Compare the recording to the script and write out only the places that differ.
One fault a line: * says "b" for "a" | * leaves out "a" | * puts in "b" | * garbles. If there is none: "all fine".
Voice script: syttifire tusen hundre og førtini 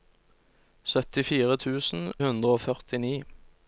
all fine